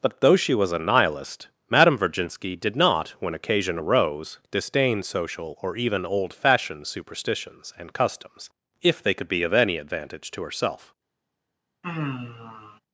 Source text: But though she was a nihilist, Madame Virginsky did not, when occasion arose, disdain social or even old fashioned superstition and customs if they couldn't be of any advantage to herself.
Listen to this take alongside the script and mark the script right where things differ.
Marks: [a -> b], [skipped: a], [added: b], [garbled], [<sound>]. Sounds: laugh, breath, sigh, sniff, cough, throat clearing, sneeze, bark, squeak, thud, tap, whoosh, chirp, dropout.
But though she was a nihilist, Madame Virginsky did not, when occasion arose, disdain social or even old fashioned [superstition -> superstitions] and customs if they [couldn't -> could] be of any advantage to herself. [sigh]